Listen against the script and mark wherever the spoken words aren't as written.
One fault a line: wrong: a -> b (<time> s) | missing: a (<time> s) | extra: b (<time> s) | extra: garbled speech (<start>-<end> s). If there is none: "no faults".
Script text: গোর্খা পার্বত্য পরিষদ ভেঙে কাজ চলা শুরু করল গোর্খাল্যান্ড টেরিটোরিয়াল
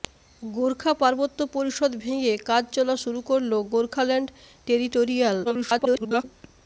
extra: garbled speech (5.4-6.2 s)